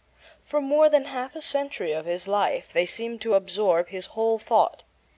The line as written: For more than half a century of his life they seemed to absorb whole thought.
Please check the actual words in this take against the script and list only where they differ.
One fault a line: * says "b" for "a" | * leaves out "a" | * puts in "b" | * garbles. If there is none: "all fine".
* puts in "his"